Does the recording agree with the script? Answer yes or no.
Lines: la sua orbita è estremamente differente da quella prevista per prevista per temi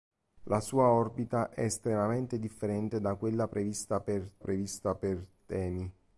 yes